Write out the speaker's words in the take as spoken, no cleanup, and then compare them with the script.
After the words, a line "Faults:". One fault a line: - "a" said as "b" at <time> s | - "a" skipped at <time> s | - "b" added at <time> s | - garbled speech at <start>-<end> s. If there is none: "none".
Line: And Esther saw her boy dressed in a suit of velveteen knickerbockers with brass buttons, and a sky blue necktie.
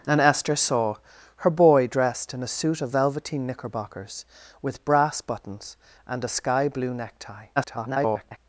And Esther saw her boy dressed in a suit of velveteen knickerbockers with brass buttons, and a sky blue necktie. [garbled]
Faults:
- garbled speech at 7.6-8.4 s